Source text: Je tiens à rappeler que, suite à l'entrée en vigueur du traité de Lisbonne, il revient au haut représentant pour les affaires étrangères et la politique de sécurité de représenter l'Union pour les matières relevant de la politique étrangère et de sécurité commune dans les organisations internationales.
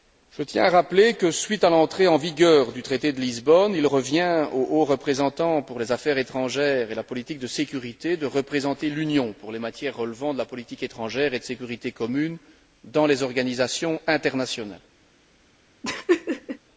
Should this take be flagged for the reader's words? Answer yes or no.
no